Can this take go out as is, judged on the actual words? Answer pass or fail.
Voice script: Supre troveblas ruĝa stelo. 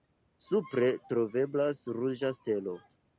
pass